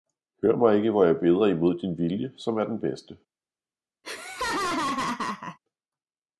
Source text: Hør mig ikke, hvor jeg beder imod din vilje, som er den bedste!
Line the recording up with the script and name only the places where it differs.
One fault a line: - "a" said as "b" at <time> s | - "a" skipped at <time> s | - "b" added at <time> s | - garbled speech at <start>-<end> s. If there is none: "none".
none